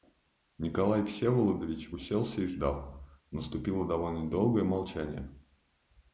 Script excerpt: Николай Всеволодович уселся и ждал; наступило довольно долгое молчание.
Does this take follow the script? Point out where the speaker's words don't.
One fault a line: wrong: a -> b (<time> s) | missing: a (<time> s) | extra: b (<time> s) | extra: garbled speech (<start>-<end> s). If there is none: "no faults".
no faults